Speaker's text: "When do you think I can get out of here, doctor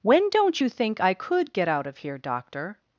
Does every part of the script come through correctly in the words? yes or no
no